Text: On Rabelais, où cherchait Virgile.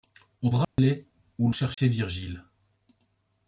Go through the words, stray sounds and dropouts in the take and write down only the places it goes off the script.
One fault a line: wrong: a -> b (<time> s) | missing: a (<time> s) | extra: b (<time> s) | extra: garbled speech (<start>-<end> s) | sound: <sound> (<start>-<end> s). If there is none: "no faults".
sound: dropout (0.6-0.8 s)
sound: dropout (1.7-1.8 s)